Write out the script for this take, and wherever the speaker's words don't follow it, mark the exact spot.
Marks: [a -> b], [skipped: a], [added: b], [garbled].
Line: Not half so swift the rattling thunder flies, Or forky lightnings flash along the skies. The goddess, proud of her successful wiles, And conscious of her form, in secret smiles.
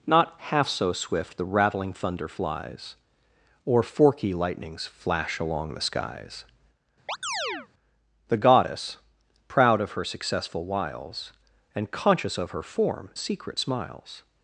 Not half so swift the rattling thunder flies, Or forky lightnings flash along the skies. The goddess, proud of her successful wiles, And conscious of her form, [skipped: in] secret smiles.